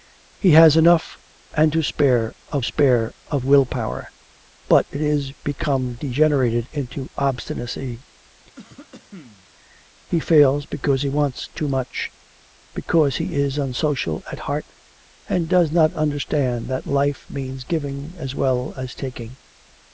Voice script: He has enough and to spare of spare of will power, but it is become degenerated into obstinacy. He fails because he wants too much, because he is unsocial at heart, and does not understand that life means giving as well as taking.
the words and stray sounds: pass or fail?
fail